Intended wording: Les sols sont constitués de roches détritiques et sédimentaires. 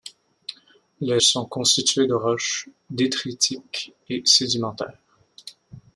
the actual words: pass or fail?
fail